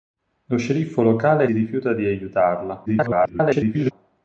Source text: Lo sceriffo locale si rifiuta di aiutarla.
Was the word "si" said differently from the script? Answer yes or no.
yes